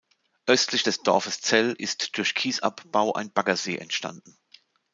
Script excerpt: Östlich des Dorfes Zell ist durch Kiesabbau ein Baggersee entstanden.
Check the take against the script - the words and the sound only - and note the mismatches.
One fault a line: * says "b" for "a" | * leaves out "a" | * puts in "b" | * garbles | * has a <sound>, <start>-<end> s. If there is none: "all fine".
all fine